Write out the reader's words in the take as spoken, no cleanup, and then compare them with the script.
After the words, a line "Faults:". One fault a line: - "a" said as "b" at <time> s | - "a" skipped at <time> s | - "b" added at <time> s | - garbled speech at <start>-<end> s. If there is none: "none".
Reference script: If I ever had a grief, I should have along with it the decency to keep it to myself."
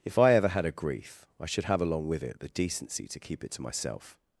If I ever had a grief, I should have along with it the decency to keep it to myself."
Faults:
none